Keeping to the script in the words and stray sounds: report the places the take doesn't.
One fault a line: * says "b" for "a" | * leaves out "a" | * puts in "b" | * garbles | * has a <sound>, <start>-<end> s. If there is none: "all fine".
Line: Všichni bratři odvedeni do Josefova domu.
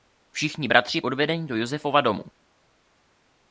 all fine